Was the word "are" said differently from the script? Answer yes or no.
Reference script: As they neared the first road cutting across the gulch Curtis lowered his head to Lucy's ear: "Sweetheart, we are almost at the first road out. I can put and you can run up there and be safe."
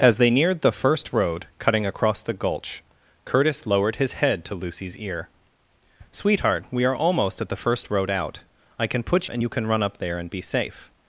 no